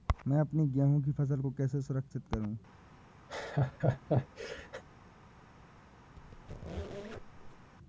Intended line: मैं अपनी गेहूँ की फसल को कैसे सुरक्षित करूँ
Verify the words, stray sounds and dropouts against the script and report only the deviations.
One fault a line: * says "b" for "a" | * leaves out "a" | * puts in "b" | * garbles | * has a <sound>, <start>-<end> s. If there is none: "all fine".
* has a laugh, 3.3-4.8 s
* has a squeak, 6.2-7.7 s